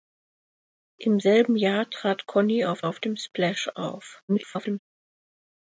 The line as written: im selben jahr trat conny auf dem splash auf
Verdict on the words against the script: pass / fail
fail